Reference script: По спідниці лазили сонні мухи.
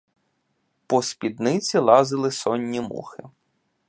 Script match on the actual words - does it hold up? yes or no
yes